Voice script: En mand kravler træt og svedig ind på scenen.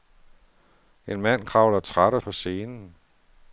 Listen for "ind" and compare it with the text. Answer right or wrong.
wrong